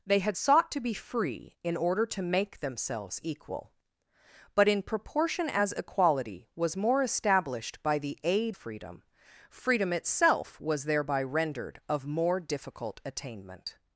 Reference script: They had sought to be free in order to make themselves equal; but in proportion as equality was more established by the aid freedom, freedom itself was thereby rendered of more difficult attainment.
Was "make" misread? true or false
false